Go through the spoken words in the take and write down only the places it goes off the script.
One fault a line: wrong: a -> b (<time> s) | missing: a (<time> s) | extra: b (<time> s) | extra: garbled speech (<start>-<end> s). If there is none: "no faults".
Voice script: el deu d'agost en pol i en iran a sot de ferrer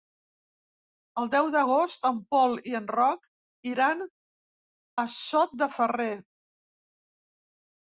extra: roc (3.0 s)